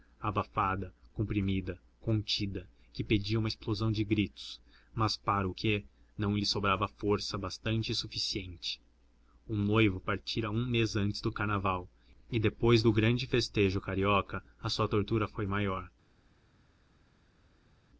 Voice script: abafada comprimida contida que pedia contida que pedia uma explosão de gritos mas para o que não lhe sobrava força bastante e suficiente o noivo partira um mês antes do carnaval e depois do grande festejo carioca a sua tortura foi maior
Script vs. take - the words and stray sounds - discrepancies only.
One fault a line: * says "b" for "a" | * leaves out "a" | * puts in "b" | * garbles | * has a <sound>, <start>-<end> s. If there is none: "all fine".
* leaves out "contida que pedia"